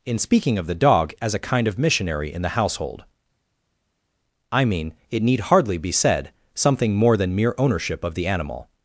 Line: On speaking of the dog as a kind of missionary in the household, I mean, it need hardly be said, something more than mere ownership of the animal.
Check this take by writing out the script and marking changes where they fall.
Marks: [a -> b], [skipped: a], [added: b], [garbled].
[On -> In] speaking of the dog as a kind of missionary in the household, I mean, it need hardly be said, something more than mere ownership of the animal.